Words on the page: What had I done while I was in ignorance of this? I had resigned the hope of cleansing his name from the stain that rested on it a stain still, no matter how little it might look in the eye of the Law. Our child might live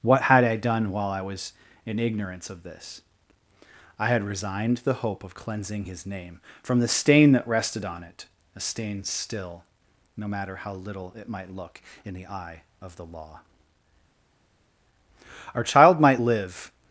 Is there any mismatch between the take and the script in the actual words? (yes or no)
no